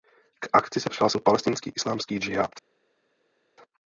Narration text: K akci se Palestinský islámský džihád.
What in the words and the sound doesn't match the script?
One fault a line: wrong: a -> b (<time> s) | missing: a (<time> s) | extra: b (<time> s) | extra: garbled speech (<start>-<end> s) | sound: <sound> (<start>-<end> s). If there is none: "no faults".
extra: přihlásil (0.9 s)